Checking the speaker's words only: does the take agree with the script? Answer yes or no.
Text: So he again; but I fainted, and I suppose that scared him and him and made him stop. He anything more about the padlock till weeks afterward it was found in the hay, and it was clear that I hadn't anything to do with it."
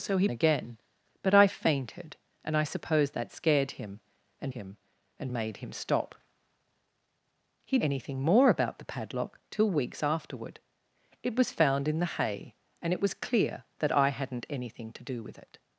yes